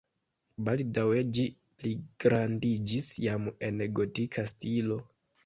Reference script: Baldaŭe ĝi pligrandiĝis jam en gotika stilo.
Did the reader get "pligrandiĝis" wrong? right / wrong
right